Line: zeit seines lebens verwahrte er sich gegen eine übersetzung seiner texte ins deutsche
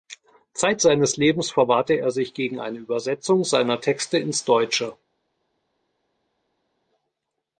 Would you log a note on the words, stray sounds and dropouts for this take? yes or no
no